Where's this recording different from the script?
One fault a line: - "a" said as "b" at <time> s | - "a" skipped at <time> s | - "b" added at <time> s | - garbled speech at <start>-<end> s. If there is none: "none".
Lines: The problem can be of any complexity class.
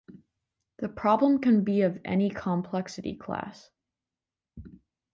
none